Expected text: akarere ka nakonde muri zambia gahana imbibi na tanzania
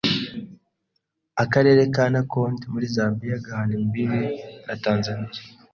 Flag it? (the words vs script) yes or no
no